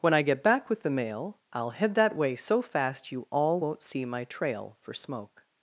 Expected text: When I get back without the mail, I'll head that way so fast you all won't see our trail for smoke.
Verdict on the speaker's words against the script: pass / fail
fail